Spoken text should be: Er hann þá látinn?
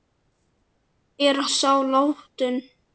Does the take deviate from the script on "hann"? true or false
true